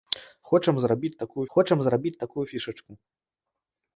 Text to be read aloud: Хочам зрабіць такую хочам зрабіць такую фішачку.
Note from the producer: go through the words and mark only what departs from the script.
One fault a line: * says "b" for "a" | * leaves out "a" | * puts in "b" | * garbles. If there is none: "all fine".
all fine